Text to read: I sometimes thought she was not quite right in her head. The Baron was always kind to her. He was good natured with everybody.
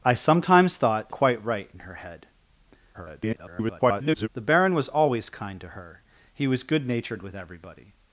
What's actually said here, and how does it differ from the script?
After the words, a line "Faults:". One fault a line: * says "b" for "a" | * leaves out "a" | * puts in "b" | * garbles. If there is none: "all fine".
I sometimes thought quite right in her head. [garbled] The Baron was always kind to her. He was good natured with everybody.
Faults:
* leaves out "she was not"
* garbles